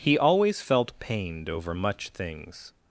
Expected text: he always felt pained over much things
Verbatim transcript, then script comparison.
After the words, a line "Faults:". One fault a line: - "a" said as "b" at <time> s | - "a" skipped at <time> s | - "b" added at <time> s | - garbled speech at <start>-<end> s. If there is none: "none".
he always felt pained over much things
Faults:
none